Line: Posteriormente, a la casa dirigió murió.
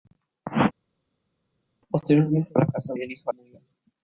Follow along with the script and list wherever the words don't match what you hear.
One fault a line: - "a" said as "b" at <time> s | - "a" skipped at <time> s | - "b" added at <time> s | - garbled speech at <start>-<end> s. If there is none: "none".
none